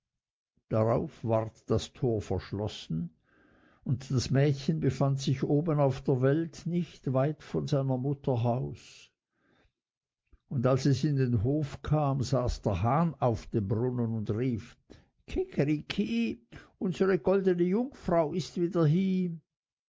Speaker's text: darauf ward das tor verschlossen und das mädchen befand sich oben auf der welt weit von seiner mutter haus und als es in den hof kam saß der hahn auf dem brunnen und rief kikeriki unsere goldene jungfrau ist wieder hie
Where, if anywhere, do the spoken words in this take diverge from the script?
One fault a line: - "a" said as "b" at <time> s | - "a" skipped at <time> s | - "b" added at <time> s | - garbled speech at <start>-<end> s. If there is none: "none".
- "nicht" added at 6.7 s